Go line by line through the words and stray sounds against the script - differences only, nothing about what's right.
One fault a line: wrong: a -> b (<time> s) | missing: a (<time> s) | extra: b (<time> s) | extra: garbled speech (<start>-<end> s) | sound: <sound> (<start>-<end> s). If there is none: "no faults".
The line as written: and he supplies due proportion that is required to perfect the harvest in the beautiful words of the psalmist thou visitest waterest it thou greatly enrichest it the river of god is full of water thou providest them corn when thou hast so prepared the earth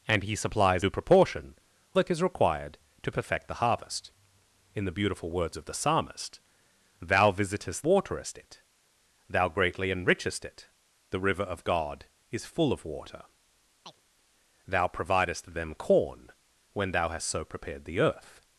sound: chirp (13.9-14.0 s)